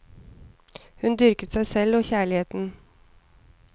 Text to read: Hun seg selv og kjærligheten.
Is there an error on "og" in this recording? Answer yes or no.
no